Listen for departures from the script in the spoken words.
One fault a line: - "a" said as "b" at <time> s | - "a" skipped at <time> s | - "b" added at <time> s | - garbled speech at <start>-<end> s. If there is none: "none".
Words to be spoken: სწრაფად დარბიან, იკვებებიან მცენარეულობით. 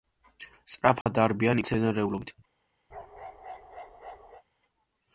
- "იკვებებიან" skipped at 1.6 s